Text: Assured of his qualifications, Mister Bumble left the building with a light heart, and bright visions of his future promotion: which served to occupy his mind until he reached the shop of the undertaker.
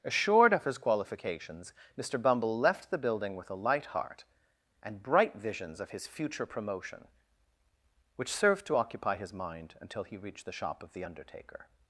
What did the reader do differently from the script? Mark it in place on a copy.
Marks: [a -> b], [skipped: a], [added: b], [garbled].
Assured of his qualifications, Mister Bumble left the building with a light heart, and bright visions of his future promotion: which served to occupy his mind until he reached the shop of the undertaker.